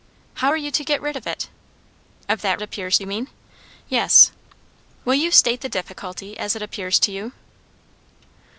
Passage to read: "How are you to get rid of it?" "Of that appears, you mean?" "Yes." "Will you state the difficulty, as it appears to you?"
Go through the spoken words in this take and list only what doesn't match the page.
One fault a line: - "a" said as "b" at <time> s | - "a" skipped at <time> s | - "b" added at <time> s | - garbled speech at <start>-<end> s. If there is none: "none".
none